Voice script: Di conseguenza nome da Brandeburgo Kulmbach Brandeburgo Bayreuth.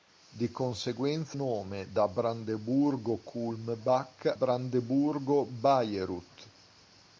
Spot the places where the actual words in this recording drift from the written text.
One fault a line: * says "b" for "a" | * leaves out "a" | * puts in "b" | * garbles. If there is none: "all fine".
all fine